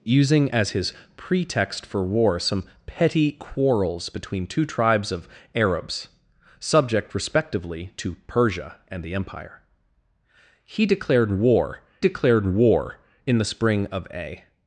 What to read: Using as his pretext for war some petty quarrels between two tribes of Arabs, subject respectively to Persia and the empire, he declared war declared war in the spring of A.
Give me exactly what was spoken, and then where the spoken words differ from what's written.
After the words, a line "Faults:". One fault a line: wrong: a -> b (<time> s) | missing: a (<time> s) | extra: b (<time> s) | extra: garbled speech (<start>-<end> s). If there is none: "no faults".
Using as his pretext for war some petty quarrels between two tribes of Arabs, subject respectively to Persia and the empire, he declared war declared war in the spring of A.
Faults:
no faults